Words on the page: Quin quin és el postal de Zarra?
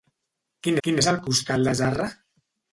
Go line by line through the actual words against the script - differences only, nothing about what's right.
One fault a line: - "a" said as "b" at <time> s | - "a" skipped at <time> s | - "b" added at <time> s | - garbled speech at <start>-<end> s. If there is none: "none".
none